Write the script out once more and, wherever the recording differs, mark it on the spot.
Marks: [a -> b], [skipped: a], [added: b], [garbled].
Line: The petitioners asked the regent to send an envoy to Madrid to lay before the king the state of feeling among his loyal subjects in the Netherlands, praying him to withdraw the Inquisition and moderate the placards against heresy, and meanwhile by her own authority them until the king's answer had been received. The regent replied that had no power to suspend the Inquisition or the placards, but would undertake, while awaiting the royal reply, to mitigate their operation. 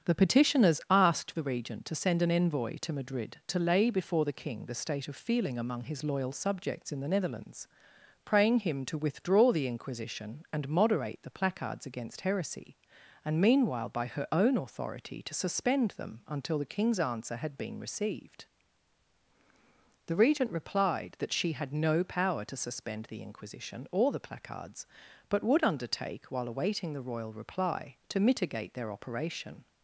The petitioners asked the regent to send an envoy to Madrid to lay before the king the state of feeling among his loyal subjects in the Netherlands, praying him to withdraw the Inquisition and moderate the placards against heresy, and meanwhile by her own authority [added: to suspend] them until the king's answer had been received. The regent replied that [added: she] had no power to suspend the Inquisition or the placards, but would undertake, while awaiting the royal reply, to mitigate their operation.